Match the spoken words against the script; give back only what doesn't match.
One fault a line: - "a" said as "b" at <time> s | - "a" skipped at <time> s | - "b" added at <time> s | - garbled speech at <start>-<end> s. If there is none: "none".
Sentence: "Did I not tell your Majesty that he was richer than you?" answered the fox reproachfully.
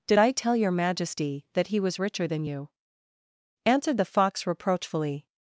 - "not" skipped at 0.3 s